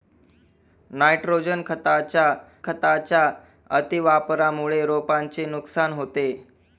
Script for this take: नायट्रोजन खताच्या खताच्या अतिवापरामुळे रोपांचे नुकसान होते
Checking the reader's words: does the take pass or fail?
pass